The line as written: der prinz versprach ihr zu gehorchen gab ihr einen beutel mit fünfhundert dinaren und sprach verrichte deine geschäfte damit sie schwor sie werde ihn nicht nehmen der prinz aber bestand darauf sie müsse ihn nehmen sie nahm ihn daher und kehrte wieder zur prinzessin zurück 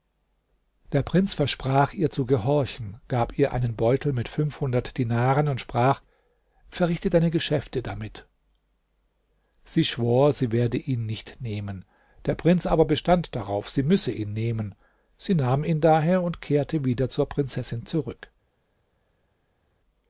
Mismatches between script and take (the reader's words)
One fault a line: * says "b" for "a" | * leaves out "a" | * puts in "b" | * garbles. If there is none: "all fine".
all fine